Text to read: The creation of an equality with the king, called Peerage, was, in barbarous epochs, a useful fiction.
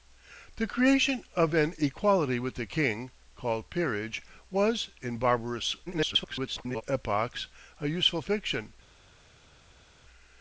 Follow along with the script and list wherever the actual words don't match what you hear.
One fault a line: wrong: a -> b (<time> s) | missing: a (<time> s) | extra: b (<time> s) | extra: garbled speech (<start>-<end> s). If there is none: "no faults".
extra: garbled speech (5.9-6.8 s)